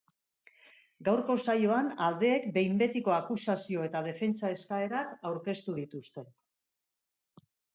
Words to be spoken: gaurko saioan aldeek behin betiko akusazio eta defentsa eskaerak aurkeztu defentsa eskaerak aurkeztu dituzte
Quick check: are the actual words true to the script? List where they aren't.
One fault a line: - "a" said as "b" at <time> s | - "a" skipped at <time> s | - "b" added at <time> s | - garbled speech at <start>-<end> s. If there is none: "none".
- "defentsa eskaerak aurkeztu" skipped at 5.8 s